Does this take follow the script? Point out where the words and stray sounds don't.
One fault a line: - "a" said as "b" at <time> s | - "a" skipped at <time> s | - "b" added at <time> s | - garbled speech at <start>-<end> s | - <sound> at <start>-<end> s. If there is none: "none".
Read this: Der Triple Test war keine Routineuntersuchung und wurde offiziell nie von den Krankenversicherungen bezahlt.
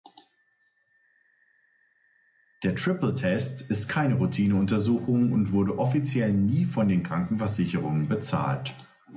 - "war" said as "ist" at 3.7 s